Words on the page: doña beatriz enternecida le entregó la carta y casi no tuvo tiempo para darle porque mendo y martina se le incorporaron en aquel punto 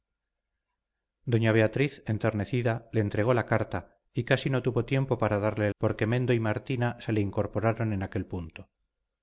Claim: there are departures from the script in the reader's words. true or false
false